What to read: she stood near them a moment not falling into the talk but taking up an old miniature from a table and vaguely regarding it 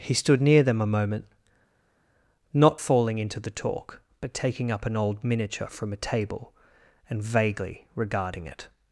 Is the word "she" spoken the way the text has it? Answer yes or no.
no